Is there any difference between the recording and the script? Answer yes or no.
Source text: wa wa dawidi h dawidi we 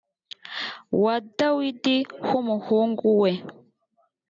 yes